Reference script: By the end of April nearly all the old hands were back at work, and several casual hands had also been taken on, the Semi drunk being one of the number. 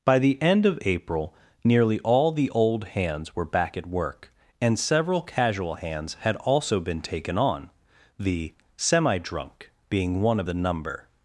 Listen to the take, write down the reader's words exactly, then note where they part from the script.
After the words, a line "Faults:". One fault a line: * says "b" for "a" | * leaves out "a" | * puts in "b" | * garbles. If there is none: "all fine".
By the end of April nearly all the old hands were back at work, and several casual hands had also been taken on, the Semi drunk being one of the number.
Faults:
all fine